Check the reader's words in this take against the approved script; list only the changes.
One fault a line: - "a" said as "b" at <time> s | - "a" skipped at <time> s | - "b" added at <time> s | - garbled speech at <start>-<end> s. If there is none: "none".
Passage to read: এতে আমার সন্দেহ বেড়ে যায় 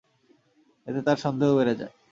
- "আমার" said as "তার" at 1.0 s